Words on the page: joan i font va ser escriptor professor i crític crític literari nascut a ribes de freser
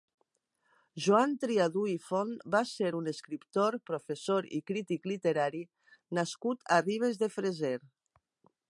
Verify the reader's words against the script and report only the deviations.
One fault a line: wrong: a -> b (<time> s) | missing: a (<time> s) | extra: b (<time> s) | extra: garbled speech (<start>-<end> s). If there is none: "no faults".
extra: triadú (1.4 s)
extra: un (3.0 s)
missing: crític (5.1 s)